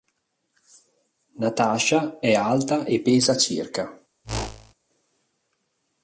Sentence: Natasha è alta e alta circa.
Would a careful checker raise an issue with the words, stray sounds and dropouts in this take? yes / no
yes